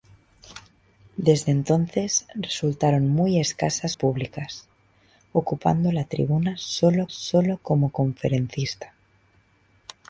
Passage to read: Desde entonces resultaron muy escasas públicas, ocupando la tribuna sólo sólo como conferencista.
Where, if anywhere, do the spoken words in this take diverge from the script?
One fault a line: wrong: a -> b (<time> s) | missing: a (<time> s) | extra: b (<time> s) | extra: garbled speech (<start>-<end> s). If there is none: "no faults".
no faults